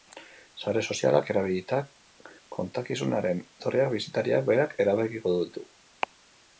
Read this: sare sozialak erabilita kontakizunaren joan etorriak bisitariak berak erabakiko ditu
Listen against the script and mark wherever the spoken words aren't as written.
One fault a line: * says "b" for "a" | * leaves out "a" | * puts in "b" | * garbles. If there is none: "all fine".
* leaves out "joan"